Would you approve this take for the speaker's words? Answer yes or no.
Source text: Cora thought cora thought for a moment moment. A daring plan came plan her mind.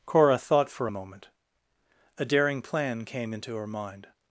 no